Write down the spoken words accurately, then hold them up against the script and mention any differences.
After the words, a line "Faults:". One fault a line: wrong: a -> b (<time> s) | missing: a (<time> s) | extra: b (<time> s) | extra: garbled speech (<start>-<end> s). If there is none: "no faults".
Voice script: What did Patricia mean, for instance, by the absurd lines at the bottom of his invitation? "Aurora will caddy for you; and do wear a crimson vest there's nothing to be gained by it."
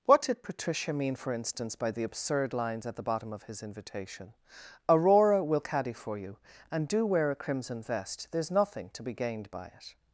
What did Patricia mean, for instance, by the absurd lines at the bottom of his invitation? "Aurora will caddy for you; and do wear a crimson vest there's nothing to be gained by it."
Faults:
no faults